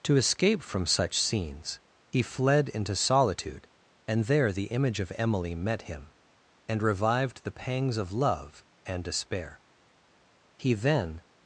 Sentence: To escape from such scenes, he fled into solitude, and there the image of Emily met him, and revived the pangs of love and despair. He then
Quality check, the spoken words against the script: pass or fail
pass